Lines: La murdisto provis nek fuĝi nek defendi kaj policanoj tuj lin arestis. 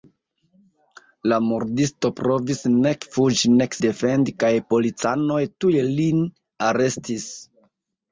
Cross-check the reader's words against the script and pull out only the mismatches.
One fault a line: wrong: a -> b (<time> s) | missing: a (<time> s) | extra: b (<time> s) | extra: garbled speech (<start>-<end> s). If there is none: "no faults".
no faults